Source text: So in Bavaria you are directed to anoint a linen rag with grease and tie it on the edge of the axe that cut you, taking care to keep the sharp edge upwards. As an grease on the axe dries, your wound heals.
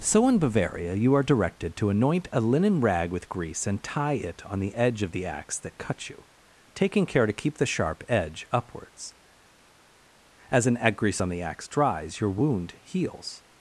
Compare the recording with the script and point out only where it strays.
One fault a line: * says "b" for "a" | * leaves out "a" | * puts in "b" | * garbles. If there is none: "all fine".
all fine